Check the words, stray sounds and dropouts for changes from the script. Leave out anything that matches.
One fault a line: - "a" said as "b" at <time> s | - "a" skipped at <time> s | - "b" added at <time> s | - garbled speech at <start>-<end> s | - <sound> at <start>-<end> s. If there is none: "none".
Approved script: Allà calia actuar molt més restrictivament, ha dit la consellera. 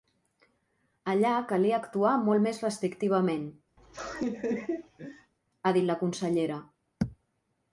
- laugh at 3.8-5.3 s